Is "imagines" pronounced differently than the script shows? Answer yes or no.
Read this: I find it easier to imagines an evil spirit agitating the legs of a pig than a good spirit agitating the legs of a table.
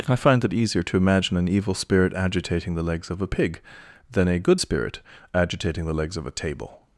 yes